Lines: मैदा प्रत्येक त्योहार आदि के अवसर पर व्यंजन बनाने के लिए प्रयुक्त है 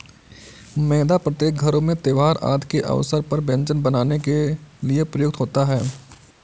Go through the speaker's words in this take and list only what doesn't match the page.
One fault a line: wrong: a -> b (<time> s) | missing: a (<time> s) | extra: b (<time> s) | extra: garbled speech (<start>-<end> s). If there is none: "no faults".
extra: घरों में (1.6 s)
extra: होता (5.4 s)